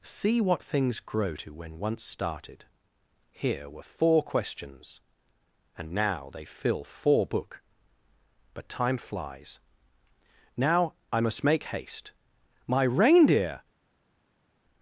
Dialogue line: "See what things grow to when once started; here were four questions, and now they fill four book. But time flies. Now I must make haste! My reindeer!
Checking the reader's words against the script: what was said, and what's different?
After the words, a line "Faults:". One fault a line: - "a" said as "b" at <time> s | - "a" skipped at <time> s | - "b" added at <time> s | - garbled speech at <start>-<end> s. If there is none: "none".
"See what things grow to when once started; here were four questions, and now they fill four book. But time flies. Now I must make haste! My reindeer!
Faults:
none